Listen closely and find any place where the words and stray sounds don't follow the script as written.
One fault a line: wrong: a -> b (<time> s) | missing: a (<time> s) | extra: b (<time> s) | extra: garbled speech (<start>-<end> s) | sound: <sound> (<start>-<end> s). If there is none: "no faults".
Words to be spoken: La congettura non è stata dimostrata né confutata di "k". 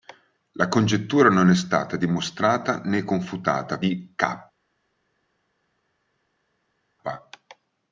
no faults